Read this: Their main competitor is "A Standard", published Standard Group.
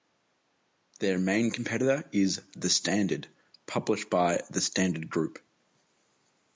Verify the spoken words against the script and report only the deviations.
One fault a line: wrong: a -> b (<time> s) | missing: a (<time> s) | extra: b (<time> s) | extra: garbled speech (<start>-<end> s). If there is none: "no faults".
wrong: A -> The (2.5 s)
extra: by the (4.1 s)